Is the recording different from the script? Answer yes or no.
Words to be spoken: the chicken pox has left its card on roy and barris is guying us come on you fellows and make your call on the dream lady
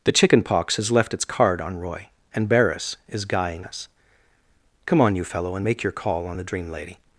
yes